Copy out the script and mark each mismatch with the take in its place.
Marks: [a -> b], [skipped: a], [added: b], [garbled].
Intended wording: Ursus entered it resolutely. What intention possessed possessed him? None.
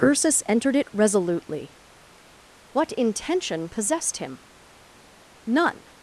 Ursus entered it resolutely. What intention possessed [skipped: possessed] him? None.